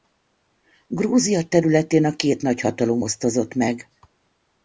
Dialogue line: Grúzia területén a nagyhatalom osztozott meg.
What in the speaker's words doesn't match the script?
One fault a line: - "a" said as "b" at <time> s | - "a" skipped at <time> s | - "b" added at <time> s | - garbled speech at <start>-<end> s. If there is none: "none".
- "két" added at 2.1 s